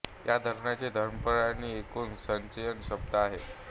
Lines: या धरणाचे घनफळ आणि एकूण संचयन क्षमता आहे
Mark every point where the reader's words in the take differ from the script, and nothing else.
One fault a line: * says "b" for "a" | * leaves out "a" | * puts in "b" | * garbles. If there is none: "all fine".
all fine